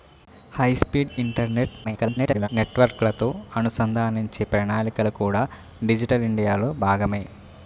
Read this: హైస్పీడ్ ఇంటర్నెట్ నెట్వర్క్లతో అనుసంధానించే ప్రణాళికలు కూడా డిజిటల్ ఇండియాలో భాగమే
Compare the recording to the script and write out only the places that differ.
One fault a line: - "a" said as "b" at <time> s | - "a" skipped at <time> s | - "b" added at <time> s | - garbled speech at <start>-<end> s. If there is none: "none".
- garbled speech at 1.8-2.5 s